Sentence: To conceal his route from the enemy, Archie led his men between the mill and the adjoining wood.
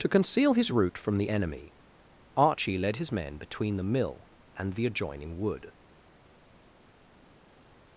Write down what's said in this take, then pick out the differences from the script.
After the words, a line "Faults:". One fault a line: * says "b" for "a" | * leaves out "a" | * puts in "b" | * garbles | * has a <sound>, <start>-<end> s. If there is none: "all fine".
To conceal his route from the enemy, Archie led his men between the mill and the adjoining wood.
Faults:
all fine